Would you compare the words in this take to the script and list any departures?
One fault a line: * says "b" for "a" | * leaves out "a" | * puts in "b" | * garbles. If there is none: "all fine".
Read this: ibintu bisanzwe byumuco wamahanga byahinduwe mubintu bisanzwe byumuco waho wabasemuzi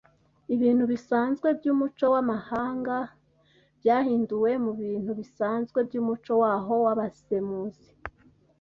all fine